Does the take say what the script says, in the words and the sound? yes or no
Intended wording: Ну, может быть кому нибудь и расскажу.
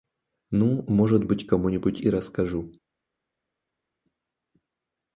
yes